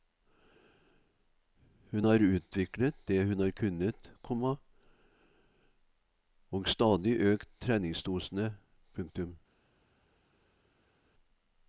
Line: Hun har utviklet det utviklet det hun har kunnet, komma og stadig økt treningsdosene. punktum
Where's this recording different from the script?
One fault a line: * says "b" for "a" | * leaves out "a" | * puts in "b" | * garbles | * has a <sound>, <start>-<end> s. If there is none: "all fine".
* leaves out "utviklet det"